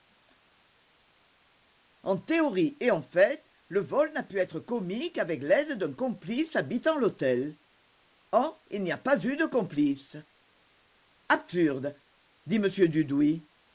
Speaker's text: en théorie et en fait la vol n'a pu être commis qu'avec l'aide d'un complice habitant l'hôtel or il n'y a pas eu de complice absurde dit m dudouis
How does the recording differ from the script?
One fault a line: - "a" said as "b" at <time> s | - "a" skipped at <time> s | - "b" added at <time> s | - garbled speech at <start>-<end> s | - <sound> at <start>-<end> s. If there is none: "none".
- "la" said as "le" at 3.7 s